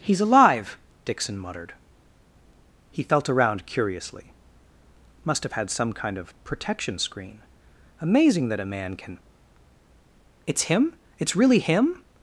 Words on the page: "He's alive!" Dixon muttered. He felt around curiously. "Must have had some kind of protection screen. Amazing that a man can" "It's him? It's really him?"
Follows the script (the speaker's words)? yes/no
yes